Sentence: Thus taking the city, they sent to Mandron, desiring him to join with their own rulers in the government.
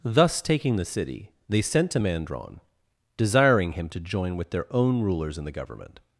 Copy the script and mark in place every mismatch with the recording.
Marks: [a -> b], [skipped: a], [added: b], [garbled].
Thus taking the city, they sent to Mandron, desiring him to join with their own rulers in the government.